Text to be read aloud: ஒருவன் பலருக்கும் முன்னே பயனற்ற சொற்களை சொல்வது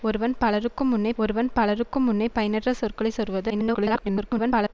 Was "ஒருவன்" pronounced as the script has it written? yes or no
yes